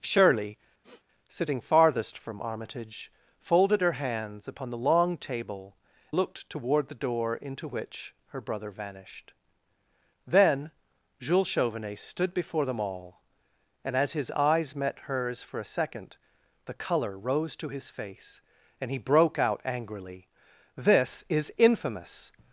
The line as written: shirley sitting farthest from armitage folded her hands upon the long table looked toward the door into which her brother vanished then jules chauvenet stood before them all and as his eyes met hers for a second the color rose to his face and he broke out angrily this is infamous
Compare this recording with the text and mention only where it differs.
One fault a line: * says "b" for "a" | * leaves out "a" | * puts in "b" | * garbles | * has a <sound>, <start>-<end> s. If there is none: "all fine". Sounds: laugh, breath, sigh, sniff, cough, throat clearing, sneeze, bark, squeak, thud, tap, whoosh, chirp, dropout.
* has a sniff, 0.8-1.0 s